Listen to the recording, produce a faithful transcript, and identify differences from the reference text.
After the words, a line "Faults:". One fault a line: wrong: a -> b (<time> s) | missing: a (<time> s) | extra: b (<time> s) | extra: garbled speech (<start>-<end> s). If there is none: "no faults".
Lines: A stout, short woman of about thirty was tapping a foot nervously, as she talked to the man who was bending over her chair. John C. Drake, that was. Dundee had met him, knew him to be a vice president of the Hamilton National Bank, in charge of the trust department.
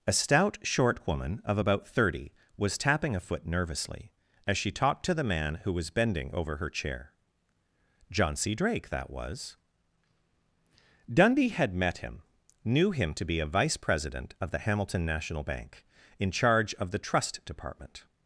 A stout, short woman of about thirty was tapping a foot nervously, as she talked to the man who was bending over her chair. John C. Drake, that was. Dundee had met him, knew him to be a vice president of the Hamilton National Bank, in charge of the trust department.
Faults:
no faults